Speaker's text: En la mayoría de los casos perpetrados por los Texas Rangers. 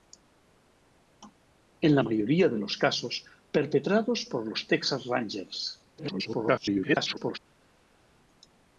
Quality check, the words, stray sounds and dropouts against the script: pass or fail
fail